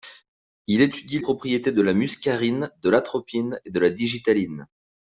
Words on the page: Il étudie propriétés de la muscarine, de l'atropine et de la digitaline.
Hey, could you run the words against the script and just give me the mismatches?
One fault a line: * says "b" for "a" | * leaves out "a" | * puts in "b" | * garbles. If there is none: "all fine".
all fine